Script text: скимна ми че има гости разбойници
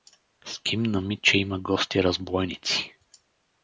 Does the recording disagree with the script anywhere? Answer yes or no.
no